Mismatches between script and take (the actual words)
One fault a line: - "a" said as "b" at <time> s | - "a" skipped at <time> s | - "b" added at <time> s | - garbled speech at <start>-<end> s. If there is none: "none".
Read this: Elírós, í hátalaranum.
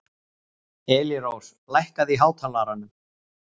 - "lækkaðu" added at 1.8 s